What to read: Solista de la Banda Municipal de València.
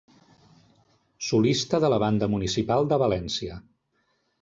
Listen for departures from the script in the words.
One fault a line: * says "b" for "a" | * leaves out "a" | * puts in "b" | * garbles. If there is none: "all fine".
all fine